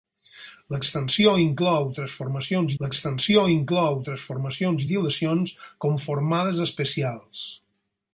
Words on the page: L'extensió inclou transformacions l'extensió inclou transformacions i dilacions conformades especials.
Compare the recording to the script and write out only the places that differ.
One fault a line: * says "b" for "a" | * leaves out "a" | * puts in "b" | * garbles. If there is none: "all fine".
all fine